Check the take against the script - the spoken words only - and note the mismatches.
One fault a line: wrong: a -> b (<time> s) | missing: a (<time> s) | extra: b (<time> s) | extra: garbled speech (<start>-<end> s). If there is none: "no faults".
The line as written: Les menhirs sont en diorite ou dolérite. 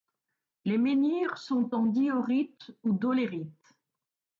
no faults